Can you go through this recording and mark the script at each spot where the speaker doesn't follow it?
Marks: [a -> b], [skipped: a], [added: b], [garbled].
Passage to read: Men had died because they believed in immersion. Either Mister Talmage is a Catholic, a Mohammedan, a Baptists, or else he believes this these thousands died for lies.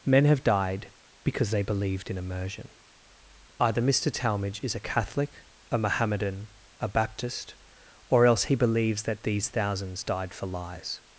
Men [had -> have] died because they believed in immersion. Either Mister Talmage is a Catholic, a Mohammedan, a [Baptists, -> Baptist] or else he believes [this -> that] these thousands died for lies.